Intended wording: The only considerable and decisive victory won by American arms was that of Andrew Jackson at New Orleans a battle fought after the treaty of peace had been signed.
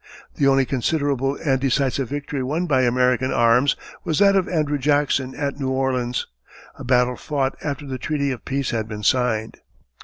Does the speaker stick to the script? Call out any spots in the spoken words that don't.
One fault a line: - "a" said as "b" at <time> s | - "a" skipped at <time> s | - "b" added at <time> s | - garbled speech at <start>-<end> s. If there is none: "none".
none